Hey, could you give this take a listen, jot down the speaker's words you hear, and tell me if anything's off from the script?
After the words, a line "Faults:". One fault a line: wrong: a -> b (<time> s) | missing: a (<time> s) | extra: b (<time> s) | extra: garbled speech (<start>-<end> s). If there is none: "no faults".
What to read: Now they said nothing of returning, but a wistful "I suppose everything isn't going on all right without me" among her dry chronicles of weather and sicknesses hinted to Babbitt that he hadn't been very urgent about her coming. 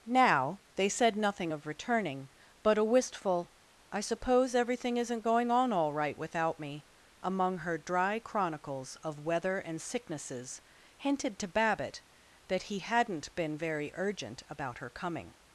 Now they said nothing of returning, but a wistful "I suppose everything isn't going on all right without me" among her dry chronicles of weather and sicknesses hinted to Babbitt that he hadn't been very urgent about her coming.
Faults:
no faults